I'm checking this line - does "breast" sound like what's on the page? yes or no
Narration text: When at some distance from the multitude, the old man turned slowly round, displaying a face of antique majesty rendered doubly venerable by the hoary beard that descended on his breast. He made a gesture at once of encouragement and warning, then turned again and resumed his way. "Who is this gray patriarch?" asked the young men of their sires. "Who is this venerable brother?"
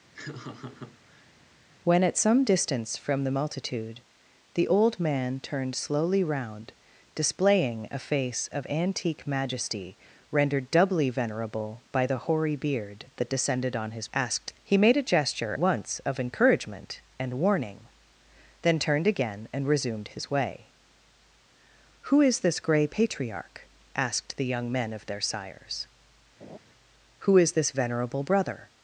no